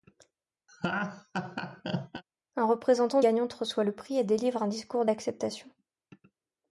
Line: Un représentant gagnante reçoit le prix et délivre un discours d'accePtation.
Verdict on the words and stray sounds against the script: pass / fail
fail